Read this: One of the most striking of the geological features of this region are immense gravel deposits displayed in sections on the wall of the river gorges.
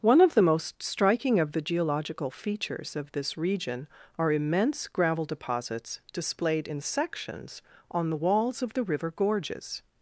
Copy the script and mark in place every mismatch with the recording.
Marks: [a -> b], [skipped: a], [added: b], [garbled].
One of the most striking of the geological features of this region are immense gravel deposits displayed in sections on the [wall -> walls] of the river gorges.